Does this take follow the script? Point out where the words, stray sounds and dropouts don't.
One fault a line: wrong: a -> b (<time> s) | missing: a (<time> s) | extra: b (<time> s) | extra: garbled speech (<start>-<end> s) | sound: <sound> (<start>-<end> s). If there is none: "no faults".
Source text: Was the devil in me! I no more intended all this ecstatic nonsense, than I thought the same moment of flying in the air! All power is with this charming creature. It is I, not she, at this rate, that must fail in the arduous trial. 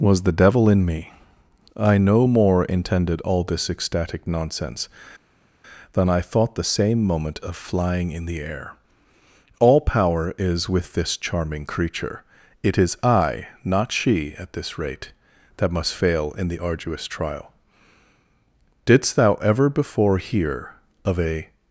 extra: Didst thou ever before hear of a (18.8 s)